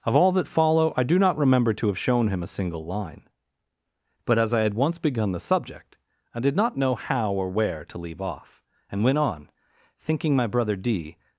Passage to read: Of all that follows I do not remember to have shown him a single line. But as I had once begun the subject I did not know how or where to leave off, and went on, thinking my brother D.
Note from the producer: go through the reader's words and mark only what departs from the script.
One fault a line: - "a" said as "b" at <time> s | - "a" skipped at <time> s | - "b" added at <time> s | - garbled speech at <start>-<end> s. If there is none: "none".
- "follows" said as "follow" at 0.5 s